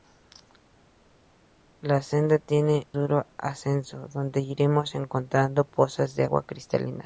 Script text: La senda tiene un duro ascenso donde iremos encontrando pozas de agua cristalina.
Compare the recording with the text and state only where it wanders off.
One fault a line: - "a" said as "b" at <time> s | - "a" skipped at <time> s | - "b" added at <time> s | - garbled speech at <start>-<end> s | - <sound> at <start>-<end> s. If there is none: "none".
- "un" skipped at 2.9 s